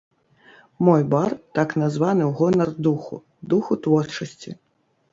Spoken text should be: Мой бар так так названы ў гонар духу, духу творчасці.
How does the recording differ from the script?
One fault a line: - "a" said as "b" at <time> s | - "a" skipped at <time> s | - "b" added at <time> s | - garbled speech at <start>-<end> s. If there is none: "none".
- "так" skipped at 1.8 s